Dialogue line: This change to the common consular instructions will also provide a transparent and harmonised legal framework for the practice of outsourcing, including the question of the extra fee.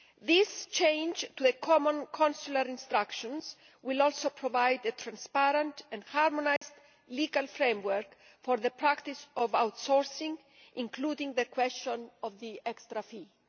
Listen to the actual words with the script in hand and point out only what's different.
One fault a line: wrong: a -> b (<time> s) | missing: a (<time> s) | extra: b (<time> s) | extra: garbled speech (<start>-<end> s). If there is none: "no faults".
no faults